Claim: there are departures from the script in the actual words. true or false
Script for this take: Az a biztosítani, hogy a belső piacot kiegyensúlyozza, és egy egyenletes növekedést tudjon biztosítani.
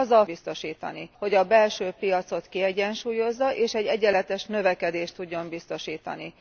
false